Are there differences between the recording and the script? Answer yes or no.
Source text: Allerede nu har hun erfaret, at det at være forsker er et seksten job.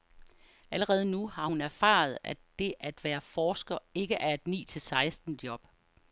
yes